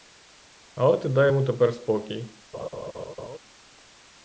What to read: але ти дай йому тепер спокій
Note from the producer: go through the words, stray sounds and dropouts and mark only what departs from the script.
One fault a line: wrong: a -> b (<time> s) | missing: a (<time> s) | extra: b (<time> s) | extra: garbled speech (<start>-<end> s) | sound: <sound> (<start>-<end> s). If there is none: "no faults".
sound: laugh (2.5-3.4 s)